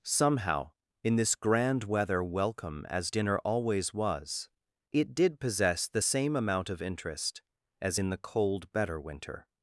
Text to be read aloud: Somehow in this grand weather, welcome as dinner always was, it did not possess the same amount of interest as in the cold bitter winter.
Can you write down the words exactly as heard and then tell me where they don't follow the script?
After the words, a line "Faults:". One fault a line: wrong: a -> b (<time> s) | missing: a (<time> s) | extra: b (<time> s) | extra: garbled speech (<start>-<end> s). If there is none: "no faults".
Somehow in this grand weather, welcome as dinner always was, it did possess the same amount of interest as in the cold better winter.
Faults:
missing: not (5.4 s)
wrong: bitter -> better (8.7 s)